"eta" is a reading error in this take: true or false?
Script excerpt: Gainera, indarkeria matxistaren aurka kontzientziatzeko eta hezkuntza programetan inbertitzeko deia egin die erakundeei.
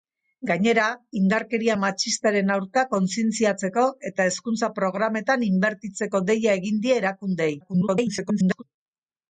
false